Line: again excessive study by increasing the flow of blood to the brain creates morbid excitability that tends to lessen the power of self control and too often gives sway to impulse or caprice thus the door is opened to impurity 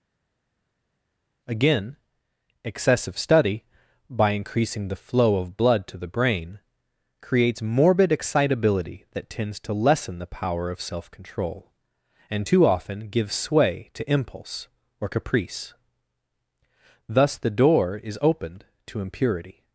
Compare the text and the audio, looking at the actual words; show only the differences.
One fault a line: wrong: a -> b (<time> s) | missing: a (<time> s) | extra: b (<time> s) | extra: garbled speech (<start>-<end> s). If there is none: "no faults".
no faults